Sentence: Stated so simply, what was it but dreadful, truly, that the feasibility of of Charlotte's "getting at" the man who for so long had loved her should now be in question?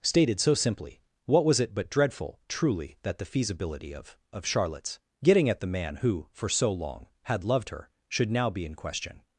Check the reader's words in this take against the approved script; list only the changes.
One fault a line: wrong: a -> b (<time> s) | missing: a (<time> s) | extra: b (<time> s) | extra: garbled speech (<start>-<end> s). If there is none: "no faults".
no faults